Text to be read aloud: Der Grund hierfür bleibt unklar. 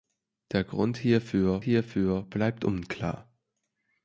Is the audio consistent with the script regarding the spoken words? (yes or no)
no